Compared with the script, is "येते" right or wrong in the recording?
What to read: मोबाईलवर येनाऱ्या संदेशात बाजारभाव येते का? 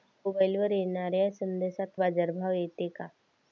right